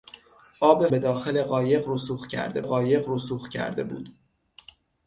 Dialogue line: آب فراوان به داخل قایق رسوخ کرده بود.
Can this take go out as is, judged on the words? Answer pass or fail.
fail